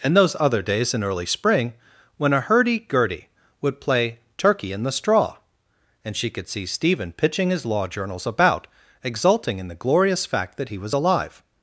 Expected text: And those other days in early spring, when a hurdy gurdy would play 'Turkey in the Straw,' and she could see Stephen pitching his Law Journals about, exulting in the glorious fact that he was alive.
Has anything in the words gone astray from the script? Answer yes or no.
no